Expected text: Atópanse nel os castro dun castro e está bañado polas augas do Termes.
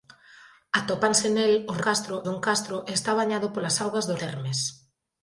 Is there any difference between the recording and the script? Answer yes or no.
no